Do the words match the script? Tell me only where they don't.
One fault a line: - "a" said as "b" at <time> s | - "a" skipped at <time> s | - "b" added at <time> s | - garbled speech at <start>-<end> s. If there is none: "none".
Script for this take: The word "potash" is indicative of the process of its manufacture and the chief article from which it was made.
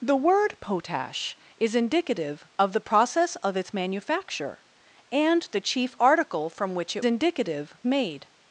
- "was" said as "indicative" at 7.0 s